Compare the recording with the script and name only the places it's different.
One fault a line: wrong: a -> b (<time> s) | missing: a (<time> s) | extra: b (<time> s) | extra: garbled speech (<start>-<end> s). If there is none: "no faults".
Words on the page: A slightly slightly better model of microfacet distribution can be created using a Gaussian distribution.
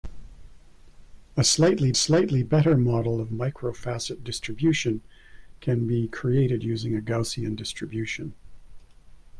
no faults